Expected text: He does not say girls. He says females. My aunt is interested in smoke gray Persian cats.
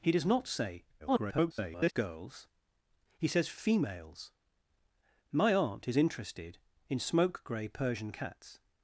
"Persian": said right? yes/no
yes